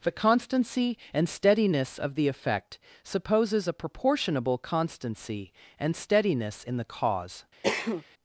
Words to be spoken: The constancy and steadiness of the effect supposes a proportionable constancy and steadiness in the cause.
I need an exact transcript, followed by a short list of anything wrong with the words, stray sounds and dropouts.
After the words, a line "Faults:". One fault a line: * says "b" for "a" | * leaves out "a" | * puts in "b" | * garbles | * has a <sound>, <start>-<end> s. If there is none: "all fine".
The constancy and steadiness of the effect supposes a proportionable constancy and steadiness in the cause.
Faults:
* has a cough, 7.6-8.0 s